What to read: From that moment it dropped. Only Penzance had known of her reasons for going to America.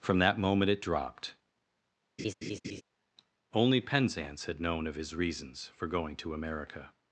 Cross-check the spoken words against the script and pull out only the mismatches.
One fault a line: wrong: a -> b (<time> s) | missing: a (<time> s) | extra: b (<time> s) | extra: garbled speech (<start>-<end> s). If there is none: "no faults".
wrong: her -> his (4.9 s)